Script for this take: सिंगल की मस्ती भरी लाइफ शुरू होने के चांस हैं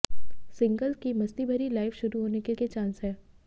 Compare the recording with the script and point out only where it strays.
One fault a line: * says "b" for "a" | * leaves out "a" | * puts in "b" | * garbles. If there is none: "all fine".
* puts in "के"